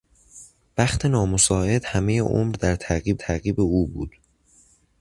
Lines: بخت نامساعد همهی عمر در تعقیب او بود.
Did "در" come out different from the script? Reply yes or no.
no